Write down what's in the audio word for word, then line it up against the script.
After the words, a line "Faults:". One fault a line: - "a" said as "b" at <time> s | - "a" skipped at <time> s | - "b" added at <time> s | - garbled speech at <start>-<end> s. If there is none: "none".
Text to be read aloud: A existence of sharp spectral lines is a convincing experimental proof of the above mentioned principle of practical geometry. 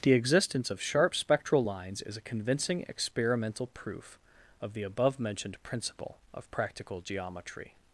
The existence of sharp spectral lines is a convincing experimental proof of the above mentioned principle of practical geometry.
Faults:
- "A" said as "The" at 0.0 s